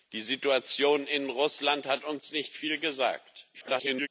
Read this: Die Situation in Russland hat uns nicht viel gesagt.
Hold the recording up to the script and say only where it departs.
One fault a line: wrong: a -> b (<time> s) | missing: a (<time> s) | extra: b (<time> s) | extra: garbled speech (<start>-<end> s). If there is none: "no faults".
extra: garbled speech (3.5-4.1 s)